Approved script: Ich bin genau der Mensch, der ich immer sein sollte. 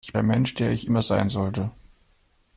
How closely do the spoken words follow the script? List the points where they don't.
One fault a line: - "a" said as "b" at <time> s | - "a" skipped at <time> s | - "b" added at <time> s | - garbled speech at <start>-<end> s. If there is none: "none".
- "bin genau" skipped at 0.1 s